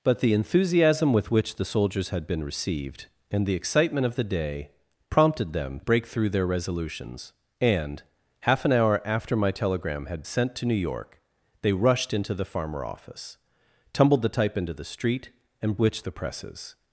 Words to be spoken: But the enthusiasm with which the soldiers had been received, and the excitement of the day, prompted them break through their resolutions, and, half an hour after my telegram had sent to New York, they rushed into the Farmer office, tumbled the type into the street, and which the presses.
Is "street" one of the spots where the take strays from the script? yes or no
no